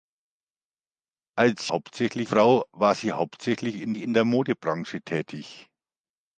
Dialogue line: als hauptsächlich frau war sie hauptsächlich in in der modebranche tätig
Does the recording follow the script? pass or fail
pass